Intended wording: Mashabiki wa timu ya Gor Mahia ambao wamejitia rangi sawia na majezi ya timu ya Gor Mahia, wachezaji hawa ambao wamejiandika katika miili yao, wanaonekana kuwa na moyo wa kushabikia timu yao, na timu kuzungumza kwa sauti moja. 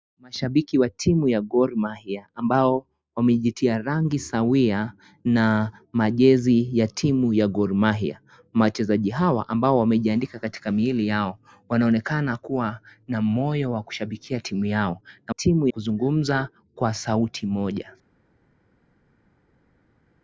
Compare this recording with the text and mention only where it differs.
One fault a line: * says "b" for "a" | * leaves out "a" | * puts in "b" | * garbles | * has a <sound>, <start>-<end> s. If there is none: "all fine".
all fine